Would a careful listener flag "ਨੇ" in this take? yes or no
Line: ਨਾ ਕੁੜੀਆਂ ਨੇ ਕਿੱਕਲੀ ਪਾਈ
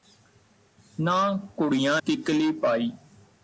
yes